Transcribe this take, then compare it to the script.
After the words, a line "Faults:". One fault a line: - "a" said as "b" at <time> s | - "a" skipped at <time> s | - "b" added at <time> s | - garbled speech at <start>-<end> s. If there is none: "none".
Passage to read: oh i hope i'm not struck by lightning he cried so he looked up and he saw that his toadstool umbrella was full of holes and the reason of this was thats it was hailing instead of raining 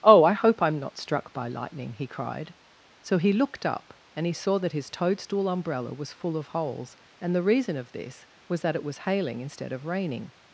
oh i hope i'm not struck by lightning he cried so he looked up and he saw that his toadstool umbrella was full of holes and the reason of this was that it was hailing instead of raining
Faults:
- "thats" said as "that" at 8.6 s